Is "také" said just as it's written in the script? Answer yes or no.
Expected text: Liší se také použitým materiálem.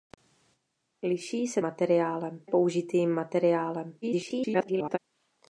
no